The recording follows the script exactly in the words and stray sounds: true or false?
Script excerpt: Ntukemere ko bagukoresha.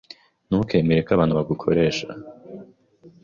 false